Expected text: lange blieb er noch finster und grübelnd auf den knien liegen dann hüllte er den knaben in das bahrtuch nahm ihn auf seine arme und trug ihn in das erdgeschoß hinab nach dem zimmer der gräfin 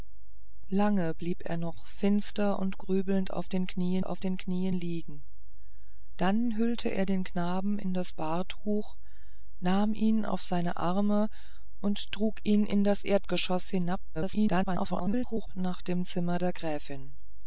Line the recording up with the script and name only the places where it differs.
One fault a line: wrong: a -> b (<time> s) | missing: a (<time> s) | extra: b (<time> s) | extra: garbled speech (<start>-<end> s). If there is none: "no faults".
extra: auf den knien (4.0 s)
extra: garbled speech (14.1-15.5 s)